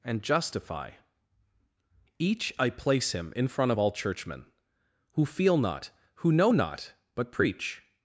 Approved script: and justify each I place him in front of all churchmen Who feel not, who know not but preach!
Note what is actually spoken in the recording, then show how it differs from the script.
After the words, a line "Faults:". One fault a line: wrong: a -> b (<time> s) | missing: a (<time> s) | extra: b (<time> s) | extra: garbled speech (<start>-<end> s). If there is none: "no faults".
and justify each I place him in front of all churchmen Who feel not, who know not but preach!
Faults:
no faults